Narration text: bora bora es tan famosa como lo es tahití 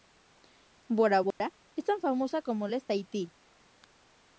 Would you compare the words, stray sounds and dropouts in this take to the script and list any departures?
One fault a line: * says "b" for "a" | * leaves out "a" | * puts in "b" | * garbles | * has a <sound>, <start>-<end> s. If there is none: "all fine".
* has a dropout, 1.3-1.4 s